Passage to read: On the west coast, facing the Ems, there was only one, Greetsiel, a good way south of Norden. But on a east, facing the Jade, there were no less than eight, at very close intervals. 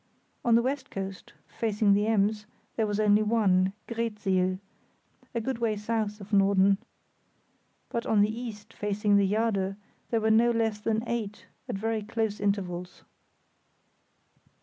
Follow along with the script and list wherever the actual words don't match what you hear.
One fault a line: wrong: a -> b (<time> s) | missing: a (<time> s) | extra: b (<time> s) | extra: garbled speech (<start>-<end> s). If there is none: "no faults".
wrong: a -> the (8.2 s)